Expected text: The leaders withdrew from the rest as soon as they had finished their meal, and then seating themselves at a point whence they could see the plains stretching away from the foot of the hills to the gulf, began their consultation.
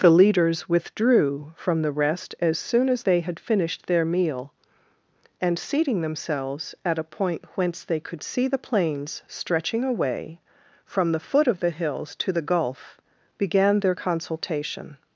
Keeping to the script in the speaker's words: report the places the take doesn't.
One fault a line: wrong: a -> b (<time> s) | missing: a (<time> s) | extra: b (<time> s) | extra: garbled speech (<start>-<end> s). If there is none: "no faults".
missing: then (5.6 s)